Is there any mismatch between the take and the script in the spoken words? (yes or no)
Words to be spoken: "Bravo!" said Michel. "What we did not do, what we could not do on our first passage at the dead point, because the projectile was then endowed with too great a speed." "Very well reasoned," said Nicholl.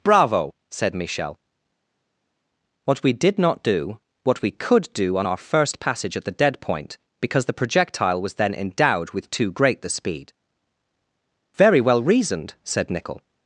yes